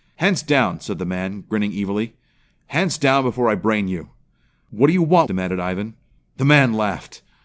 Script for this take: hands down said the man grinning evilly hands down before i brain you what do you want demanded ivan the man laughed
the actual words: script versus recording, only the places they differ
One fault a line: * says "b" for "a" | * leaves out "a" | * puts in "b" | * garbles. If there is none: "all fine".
all fine